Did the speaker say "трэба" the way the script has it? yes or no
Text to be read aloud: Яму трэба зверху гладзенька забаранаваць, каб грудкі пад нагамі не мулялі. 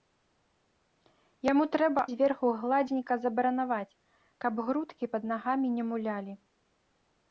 yes